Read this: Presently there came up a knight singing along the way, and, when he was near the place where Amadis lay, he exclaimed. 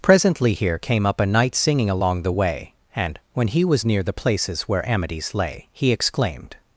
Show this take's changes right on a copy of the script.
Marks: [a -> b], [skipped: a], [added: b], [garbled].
Presently [there -> here] came up a knight singing along the way, and, when he was near the [place -> places] where Amadis lay, he exclaimed.